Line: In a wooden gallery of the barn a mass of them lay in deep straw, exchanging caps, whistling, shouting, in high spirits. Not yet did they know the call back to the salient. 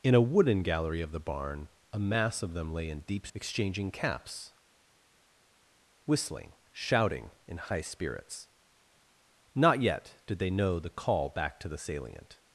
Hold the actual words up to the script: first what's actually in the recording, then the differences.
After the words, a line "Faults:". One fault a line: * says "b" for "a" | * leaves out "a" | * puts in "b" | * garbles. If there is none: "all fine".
In a wooden gallery of the barn a mass of them lay in deep exchanging caps, whistling, shouting, in high spirits. Not yet did they know the call back to the salient.
Faults:
* leaves out "straw"